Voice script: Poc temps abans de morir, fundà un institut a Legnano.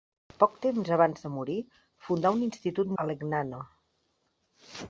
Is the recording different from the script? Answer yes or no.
no